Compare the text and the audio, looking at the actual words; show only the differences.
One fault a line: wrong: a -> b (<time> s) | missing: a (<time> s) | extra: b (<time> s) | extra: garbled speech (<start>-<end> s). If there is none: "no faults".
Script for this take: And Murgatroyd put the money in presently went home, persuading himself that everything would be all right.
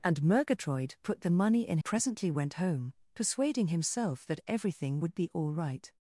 no faults